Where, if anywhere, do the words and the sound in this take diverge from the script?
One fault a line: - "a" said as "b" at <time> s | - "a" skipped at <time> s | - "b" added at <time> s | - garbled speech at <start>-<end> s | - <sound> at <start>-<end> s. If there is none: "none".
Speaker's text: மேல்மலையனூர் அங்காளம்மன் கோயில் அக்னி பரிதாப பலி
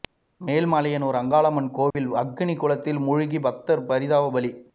- dropout at 1.9-2.0 s
- "குளத்தில் மூழ்கி பக்தர்" added at 2.5 s